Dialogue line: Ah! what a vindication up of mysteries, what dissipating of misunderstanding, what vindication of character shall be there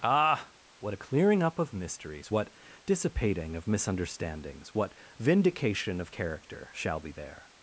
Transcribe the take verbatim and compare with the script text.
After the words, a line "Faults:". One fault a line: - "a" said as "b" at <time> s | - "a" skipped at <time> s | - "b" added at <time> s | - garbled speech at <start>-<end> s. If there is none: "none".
Ah! what a clearing up of mysteries, what dissipating of misunderstandings, what vindication of character shall be there
Faults:
- "vindication" said as "clearing" at 1.0 s
- "misunderstanding" said as "misunderstandings" at 3.7 s